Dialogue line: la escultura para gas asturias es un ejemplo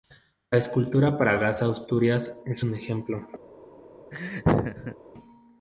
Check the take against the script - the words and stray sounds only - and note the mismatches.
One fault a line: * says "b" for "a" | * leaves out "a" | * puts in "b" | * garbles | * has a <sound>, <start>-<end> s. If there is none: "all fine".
* has a laugh, 4.1-5.0 s